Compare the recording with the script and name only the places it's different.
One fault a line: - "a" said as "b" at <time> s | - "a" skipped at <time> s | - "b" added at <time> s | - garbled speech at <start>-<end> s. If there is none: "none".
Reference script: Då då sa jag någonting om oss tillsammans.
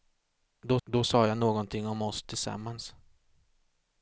none